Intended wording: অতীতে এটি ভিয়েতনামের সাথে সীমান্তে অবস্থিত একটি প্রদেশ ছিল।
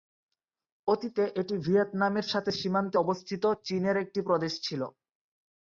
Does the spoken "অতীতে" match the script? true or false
true